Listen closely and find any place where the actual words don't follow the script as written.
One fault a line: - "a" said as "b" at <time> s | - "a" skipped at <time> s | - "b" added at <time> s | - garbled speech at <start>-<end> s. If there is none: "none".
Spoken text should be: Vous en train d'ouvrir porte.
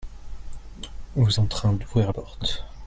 none